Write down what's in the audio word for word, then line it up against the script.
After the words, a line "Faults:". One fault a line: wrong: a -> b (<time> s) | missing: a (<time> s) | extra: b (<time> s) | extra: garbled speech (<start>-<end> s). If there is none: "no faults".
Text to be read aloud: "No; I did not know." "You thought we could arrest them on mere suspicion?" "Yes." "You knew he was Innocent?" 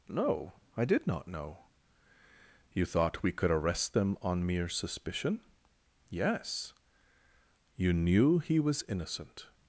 "No; I did not know." "You thought we could arrest them on mere suspicion?" "Yes." "You knew he was Innocent?"
Faults:
no faults